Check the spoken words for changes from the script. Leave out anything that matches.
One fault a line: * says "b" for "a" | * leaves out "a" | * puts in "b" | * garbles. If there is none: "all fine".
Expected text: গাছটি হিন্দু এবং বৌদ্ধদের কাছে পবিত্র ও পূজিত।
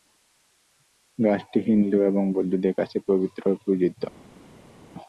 all fine